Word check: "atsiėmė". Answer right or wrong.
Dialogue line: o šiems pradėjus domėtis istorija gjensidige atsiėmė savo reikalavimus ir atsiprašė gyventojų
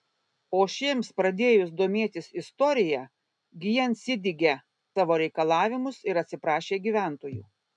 wrong